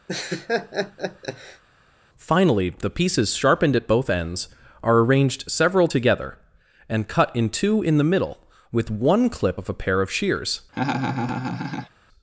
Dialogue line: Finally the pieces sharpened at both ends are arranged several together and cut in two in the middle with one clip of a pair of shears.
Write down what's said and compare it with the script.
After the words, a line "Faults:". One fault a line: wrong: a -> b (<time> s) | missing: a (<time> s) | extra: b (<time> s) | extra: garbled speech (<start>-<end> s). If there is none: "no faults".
Finally the pieces sharpened at both ends are arranged several together and cut in two in the middle with one clip of a pair of shears.
Faults:
no faults